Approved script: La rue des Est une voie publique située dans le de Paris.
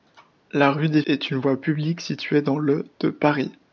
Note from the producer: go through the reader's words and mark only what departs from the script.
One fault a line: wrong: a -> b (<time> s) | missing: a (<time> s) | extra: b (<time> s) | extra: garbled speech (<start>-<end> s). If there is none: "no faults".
no faults